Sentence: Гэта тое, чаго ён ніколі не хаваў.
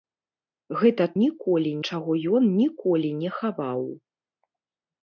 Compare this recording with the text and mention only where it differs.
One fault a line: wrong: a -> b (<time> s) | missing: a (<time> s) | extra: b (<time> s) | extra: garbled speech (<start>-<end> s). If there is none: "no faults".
wrong: тое -> ніколі (1.2 s)